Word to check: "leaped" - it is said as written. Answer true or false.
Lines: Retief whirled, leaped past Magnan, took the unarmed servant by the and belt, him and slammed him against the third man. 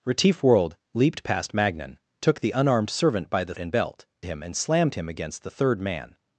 true